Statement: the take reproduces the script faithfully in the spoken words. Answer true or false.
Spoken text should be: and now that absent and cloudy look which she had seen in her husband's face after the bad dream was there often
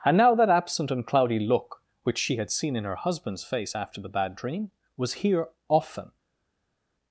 false